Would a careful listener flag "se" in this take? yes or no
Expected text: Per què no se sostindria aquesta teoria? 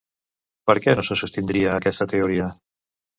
no